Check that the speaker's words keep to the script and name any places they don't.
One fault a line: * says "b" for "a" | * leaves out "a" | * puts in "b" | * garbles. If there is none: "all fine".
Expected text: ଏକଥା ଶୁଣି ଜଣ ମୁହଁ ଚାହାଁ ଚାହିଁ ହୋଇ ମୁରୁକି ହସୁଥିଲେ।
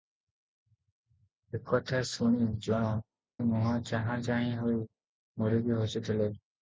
all fine